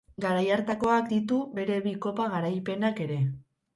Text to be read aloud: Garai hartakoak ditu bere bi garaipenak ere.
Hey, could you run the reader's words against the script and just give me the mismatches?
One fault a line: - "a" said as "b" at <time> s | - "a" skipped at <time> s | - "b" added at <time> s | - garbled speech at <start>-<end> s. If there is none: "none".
- "kopa" added at 2.1 s